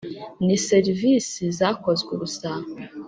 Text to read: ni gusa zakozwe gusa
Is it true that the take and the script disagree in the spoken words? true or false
true